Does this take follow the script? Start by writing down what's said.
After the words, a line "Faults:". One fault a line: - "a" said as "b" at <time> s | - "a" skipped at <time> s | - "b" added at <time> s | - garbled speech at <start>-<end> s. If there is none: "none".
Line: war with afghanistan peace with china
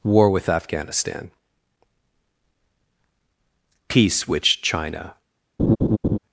war with afghanistan peace which china
Faults:
- "with" said as "which" at 4.3 s